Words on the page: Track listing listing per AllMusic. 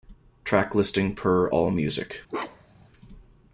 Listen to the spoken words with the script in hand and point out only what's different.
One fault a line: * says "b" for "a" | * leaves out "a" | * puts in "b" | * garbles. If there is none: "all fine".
* leaves out "listing"